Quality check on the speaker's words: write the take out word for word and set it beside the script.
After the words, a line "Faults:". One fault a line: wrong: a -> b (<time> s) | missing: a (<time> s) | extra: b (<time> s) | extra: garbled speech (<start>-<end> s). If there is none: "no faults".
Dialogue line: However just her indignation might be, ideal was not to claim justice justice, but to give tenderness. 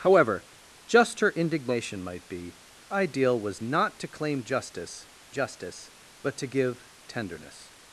However just her indignation might be, ideal was not to claim justice justice, but to give tenderness.
Faults:
no faults